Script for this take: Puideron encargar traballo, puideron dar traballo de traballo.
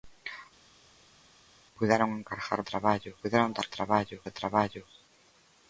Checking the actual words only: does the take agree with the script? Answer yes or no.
yes